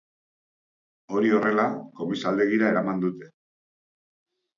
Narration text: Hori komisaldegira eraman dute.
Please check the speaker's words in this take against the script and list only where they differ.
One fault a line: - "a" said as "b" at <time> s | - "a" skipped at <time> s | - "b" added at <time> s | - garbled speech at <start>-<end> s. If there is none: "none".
- "horrela" added at 1.4 s